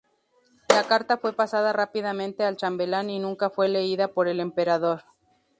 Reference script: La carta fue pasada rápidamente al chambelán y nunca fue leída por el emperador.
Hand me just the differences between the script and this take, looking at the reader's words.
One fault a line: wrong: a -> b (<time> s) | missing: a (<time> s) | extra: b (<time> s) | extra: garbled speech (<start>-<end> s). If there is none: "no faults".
no faults